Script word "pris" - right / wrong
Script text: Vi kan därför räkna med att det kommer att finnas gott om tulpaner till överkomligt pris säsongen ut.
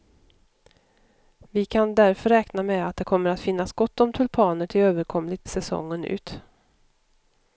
wrong